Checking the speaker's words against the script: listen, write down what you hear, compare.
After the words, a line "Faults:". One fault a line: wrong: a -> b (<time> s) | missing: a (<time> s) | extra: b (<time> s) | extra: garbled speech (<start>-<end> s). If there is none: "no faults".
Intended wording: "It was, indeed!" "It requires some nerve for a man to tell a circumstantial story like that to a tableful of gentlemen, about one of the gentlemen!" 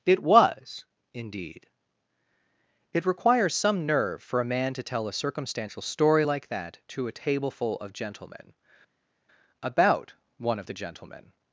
"It was, indeed!" "It requires some nerve for a man to tell a circumstantial story like that to a tableful of gentlemen, about one of the gentlemen!"
Faults:
no faults